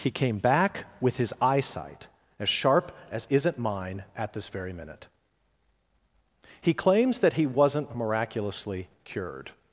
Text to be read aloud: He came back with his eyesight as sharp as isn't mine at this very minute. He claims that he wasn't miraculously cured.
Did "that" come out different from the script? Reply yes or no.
no